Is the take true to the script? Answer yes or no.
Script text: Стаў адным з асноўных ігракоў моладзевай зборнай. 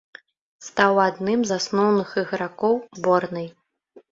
no